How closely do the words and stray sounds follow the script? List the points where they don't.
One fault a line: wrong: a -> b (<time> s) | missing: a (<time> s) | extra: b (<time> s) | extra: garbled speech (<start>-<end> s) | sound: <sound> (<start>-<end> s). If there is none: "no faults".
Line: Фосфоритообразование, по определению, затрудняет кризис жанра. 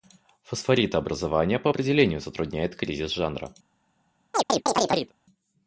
sound: chirp (4.3-5.1 s)